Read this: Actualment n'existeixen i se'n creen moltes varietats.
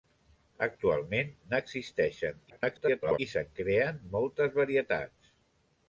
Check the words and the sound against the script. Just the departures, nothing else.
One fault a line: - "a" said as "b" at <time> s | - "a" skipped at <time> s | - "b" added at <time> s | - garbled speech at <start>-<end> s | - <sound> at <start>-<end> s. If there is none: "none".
- garbled speech at 2.5-3.2 s